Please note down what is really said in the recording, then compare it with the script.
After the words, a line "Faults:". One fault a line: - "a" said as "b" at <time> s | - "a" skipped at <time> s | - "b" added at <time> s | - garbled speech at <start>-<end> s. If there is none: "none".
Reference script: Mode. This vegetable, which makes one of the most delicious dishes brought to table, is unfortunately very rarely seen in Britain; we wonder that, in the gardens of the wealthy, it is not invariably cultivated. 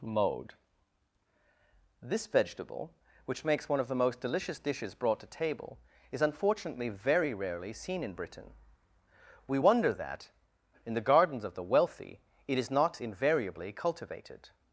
Mode. This vegetable, which makes one of the most delicious dishes brought to table, is unfortunately very rarely seen in Britain; we wonder that, in the gardens of the wealthy, it is not invariably cultivated.
Faults:
none